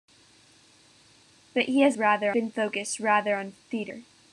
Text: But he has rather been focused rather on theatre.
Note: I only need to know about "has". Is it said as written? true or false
true